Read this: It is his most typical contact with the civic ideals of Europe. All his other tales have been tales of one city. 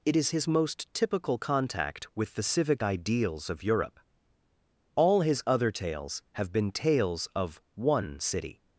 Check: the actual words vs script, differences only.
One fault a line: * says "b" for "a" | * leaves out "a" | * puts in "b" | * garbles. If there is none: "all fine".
all fine